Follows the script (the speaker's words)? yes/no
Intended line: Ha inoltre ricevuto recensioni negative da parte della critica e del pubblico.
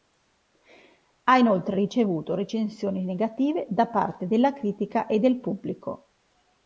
yes